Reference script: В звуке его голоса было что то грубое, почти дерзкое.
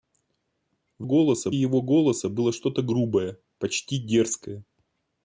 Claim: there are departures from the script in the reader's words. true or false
true